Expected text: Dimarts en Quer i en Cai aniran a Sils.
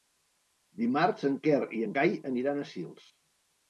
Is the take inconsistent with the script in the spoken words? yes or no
no